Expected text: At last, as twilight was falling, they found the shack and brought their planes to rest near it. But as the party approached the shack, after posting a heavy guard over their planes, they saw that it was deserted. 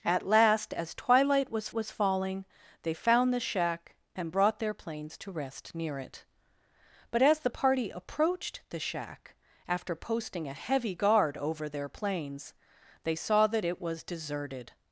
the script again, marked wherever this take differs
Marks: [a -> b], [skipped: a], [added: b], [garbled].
At last, as twilight was [added: was] falling, they found the shack and brought their planes to rest near it. But as the party approached the shack, after posting a heavy guard over their planes, they saw that it was deserted.